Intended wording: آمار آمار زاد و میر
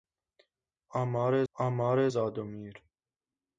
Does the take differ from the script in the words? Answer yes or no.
no